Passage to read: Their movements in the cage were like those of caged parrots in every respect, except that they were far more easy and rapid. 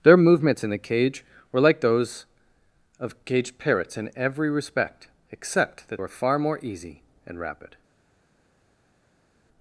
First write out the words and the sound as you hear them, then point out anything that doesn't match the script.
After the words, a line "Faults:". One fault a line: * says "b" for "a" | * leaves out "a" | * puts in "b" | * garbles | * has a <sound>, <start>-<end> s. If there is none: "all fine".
Their movements in the cage were like those of caged parrots in every respect, except that were far more easy and rapid.
Faults:
* leaves out "they"